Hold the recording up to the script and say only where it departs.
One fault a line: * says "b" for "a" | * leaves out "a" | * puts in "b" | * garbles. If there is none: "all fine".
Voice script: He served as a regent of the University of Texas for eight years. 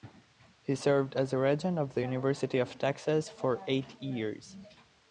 all fine